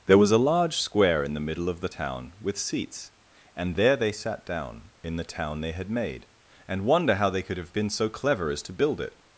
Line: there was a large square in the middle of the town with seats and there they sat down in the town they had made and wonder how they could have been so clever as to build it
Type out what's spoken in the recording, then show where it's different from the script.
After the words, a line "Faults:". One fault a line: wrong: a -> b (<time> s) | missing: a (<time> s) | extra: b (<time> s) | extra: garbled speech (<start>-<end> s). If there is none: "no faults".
there was a large square in the middle of the town with seats and there they sat down in the town they had made and wonder how they could have been so clever as to build it
Faults:
no faults